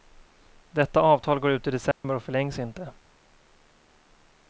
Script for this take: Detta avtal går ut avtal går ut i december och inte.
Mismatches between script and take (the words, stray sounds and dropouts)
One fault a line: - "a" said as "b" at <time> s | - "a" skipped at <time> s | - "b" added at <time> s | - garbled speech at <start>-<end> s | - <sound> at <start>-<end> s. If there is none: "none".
- "avtal går ut" skipped at 1.7 s
- dropout at 1.9-2.0 s
- "förlängs" added at 2.2 s